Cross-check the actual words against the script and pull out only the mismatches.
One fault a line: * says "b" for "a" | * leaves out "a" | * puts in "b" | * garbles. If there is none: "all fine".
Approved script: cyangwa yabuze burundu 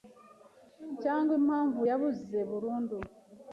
* puts in "impamvu"